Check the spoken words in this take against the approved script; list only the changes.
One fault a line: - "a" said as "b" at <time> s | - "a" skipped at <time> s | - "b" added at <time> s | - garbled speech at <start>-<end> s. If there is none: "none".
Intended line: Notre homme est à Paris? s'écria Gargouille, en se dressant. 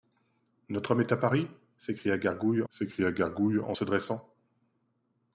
- "s'écria Gargouille" added at 2.7 s